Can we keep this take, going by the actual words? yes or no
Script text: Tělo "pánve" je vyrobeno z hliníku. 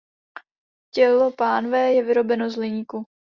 yes